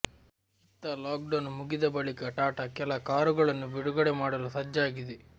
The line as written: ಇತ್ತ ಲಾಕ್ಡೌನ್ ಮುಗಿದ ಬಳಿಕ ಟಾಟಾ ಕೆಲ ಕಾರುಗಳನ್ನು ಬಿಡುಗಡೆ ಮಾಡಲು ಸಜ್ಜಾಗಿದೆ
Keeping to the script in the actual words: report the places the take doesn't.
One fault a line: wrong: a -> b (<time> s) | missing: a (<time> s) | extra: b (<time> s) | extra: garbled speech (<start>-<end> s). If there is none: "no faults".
no faults